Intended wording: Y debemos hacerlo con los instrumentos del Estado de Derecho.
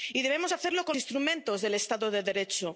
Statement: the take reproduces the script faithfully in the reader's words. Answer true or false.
false